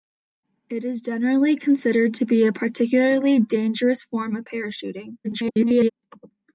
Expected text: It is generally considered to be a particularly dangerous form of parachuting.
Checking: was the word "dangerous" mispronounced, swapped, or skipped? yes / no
no